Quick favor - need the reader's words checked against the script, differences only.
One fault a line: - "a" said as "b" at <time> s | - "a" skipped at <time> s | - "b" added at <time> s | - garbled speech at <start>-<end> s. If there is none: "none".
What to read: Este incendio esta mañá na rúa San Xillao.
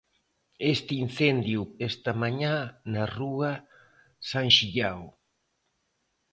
none